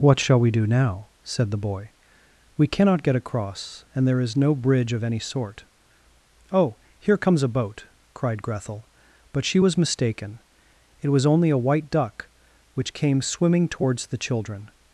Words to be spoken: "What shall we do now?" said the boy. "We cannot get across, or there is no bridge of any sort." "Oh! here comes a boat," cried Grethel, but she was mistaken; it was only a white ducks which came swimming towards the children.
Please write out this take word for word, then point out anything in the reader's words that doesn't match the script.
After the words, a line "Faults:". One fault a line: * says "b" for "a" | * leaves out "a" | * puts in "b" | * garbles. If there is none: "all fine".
"What shall we do now?" said the boy. "We cannot get across, and there is no bridge of any sort." "Oh! here comes a boat," cried Grethel, but she was mistaken; it was only a white duck which came swimming towards the children.
Faults:
* says "and" for "or"
* says "duck" for "ducks"